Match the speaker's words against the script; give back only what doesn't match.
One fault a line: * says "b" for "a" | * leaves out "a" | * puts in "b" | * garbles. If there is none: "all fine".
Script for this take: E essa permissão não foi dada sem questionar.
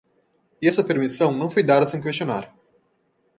all fine